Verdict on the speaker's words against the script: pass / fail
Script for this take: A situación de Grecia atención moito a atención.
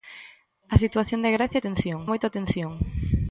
pass